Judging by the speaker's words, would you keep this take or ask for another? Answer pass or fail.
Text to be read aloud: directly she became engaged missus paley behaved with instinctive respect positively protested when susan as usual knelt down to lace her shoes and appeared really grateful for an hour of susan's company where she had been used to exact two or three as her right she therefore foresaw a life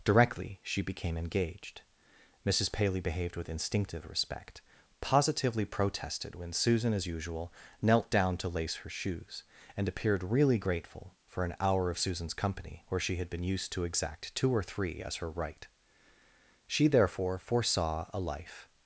pass